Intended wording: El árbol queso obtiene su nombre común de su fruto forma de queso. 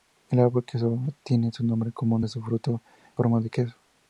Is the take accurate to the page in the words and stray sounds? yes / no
yes